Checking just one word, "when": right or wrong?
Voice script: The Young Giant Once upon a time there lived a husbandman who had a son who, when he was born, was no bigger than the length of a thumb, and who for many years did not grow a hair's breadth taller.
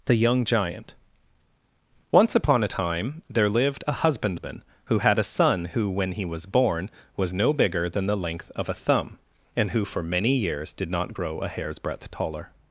right